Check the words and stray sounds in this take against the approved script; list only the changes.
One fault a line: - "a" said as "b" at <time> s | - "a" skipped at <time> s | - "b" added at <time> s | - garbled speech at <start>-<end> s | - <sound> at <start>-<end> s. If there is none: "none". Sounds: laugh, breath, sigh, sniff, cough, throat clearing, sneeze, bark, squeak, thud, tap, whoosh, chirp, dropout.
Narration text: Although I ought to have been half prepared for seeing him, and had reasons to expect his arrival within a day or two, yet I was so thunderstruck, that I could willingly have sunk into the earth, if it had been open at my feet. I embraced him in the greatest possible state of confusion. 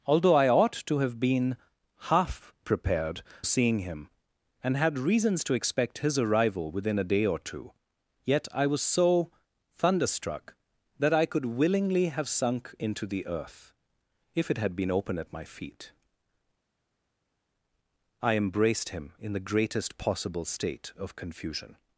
- "for" skipped at 3.2 s